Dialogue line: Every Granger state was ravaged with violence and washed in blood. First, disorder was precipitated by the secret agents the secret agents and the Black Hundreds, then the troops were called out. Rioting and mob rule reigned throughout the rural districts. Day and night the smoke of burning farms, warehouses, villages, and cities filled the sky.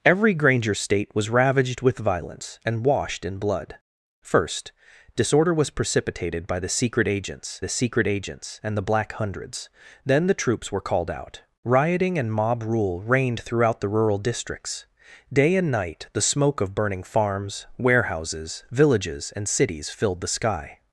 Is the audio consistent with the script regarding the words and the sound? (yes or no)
yes